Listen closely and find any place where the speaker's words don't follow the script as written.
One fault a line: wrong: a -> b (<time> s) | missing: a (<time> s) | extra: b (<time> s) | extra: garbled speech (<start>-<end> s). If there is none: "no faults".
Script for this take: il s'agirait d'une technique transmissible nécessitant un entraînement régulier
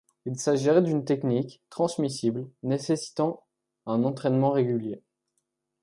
no faults